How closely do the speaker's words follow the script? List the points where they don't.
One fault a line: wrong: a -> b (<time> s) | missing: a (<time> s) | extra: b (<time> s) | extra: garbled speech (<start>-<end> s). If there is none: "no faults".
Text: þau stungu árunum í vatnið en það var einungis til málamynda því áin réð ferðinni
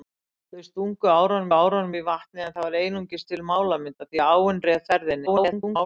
extra: árunum (1.5 s)
extra: garbled speech (5.3-5.9 s)